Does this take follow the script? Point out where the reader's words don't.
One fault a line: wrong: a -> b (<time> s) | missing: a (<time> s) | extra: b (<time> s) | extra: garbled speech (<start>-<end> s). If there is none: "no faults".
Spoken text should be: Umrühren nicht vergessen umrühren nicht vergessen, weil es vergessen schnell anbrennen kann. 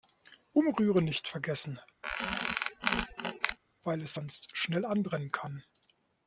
missing: umrühren nicht vergessen (1.8 s)
wrong: vergessen -> sonst (4.1 s)